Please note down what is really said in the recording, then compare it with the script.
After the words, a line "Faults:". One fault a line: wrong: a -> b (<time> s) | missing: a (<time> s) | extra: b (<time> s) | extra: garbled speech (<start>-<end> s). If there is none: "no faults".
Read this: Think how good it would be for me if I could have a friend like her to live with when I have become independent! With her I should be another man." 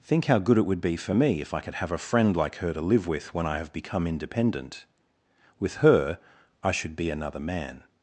Think how good it would be for me if I could have a friend like her to live with when I have become independent! With her I should be another man."
Faults:
no faults